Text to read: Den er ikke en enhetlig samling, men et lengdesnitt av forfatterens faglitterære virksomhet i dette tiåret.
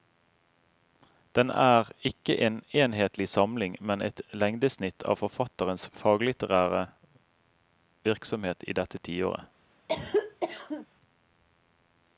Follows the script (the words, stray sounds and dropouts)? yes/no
no